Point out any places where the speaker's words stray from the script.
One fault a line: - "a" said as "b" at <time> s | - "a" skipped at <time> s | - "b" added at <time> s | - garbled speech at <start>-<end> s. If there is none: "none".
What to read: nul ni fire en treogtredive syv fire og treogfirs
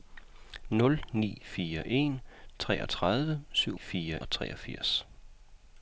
none